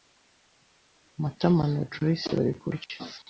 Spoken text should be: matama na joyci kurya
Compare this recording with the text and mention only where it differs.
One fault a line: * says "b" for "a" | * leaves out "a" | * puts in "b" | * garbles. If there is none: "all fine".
* puts in "bari"